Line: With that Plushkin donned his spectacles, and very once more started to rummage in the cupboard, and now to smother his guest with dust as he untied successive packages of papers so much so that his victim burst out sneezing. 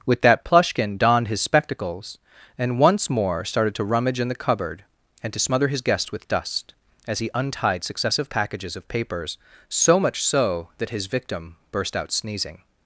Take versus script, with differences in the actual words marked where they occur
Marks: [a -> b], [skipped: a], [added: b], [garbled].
With that Plushkin donned his spectacles, and [skipped: very] once more started to rummage in the cupboard, and [skipped: now] to smother his guest with dust as he untied successive packages of papers so much so that his victim burst out sneezing.